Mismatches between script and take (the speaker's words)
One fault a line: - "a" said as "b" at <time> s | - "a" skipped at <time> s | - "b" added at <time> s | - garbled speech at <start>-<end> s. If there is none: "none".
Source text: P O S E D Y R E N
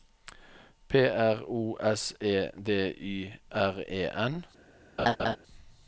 - "R" added at 1.1 s